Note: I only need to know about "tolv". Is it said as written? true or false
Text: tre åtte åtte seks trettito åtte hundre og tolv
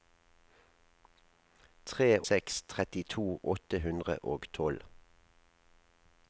true